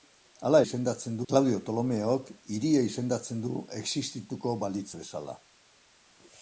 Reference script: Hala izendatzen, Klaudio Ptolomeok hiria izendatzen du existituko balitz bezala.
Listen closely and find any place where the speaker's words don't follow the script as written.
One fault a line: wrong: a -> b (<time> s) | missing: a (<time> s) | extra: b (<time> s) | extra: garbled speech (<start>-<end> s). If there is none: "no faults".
no faults